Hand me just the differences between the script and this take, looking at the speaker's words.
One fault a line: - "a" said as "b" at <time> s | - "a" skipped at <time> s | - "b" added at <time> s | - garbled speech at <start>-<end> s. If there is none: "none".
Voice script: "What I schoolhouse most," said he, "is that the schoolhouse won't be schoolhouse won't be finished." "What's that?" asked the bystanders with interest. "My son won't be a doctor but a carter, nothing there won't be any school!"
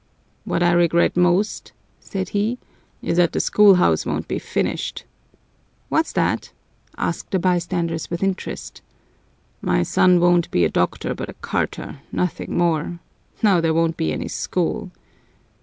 - "schoolhouse" said as "regret" at 0.7 s
- "schoolhouse won't be" skipped at 4.4 s
- "more Now" added at 12.5 s